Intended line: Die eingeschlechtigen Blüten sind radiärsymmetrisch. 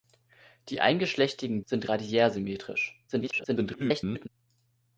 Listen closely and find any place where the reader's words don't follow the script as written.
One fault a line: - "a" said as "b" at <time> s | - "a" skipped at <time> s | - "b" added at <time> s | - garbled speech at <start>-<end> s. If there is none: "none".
- "Blüten" skipped at 1.6 s
- garbled speech at 3.1-4.3 s